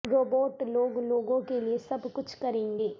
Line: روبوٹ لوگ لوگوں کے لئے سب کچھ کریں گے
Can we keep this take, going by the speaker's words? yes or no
yes